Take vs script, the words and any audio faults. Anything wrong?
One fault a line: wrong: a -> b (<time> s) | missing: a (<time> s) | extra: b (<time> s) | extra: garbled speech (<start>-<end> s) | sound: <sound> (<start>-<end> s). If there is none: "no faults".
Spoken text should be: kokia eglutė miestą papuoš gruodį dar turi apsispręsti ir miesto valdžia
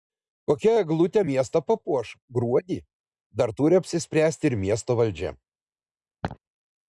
sound: laugh (6.2-6.4 s)